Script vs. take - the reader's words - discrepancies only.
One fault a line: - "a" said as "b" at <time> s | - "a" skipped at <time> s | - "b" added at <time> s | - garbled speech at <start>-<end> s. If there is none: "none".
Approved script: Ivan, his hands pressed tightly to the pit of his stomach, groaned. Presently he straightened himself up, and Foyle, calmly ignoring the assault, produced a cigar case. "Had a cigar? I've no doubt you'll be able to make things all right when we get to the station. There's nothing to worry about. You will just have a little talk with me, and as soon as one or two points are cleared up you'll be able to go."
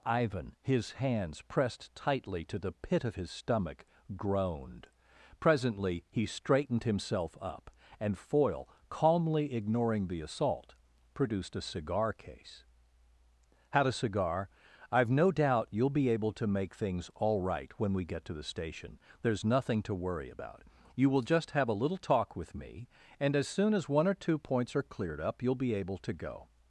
none